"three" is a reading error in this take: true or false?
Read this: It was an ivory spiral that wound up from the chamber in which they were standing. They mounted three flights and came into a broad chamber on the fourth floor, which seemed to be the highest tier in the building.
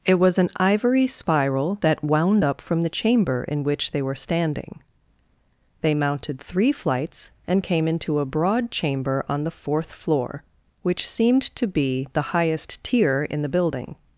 false